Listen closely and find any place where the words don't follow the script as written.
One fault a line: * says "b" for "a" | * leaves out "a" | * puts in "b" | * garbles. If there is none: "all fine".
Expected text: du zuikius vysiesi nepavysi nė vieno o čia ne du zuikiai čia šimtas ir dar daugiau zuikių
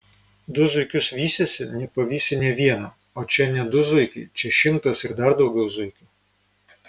all fine